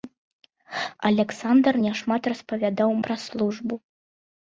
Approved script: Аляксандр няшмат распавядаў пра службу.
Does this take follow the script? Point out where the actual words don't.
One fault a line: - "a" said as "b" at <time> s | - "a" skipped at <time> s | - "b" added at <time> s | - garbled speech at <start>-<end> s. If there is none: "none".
none